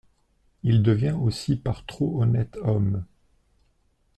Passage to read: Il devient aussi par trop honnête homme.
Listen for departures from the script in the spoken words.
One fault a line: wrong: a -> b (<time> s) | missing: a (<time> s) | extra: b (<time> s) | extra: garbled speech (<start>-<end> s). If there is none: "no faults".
no faults